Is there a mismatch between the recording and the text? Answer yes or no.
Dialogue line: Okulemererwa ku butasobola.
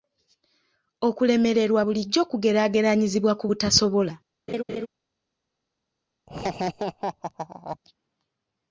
yes